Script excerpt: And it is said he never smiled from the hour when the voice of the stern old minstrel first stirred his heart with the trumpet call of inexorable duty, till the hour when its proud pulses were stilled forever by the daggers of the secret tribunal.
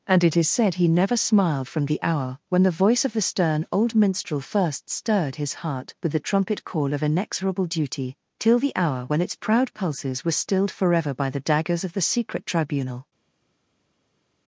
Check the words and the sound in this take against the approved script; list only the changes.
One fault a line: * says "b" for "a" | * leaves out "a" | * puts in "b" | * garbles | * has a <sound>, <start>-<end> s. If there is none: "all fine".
all fine